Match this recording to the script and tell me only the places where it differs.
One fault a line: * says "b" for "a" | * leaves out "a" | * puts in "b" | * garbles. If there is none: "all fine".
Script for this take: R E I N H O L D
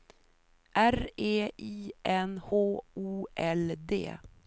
all fine